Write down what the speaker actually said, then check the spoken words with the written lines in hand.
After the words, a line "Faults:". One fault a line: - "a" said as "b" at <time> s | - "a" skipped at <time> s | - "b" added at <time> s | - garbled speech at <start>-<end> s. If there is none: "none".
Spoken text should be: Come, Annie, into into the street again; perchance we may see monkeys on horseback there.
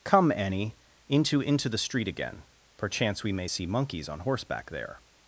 Come, Annie, into into the street again; perchance we may see monkeys on horseback there.
Faults:
none